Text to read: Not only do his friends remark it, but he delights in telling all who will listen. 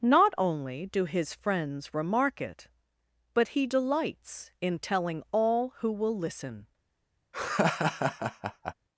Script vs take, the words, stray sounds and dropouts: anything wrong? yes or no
yes